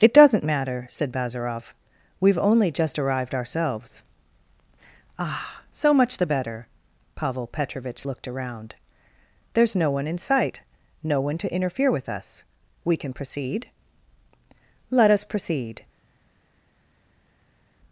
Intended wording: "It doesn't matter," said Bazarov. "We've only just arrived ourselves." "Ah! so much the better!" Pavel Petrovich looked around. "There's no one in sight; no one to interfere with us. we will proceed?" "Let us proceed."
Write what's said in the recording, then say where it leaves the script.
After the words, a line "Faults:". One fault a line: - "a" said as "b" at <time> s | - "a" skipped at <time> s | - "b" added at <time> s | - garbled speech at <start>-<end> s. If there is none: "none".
"It doesn't matter," said Bazarov. "We've only just arrived ourselves." "Ah! so much the better!" Pavel Petrovich looked around. "There's no one in sight; no one to interfere with us. we can proceed?" "Let us proceed."
Faults:
- "will" said as "can" at 12.9 s